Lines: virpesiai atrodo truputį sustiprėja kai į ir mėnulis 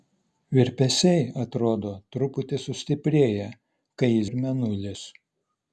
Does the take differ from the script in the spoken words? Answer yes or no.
no